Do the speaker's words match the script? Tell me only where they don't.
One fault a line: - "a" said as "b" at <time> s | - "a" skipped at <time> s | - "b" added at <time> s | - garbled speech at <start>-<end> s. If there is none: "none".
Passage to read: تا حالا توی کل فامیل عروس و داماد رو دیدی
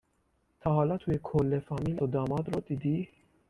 - "عروس" skipped at 2.0 s